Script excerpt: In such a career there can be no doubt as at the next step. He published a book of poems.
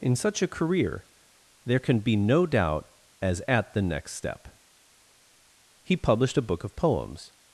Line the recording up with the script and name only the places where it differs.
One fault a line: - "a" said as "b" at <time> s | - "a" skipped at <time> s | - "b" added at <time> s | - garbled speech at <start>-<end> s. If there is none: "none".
none